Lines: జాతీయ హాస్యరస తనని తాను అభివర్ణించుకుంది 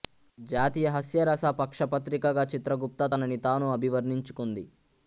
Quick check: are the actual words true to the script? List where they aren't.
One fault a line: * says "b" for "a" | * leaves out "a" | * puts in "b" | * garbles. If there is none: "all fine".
* puts in "పక్ష పత్రికగా చిత్రగుప్త"